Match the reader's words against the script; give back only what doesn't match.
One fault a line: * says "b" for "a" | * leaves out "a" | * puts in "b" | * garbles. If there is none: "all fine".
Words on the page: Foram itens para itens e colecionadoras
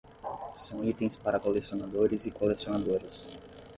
* says "São" for "Foram"
* says "colecionadores" for "itens"